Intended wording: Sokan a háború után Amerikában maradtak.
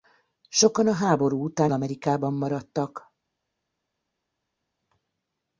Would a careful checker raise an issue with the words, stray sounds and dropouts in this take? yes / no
no